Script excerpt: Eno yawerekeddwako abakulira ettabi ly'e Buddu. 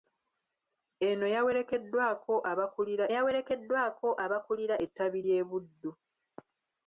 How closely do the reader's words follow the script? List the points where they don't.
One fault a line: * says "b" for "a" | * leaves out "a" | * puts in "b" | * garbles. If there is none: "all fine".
* puts in "yawerekeddwako abakulira"